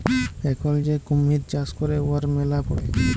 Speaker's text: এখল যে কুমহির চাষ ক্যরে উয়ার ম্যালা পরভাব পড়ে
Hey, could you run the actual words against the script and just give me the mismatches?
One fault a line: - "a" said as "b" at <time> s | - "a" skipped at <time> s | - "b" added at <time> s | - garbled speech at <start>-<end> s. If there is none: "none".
- "পরভাব" skipped at 2.6 s